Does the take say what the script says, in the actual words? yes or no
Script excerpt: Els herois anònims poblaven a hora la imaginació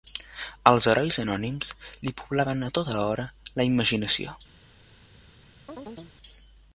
no